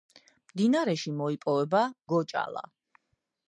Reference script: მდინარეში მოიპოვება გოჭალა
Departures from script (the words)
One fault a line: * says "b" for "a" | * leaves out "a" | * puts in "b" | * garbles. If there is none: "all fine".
all fine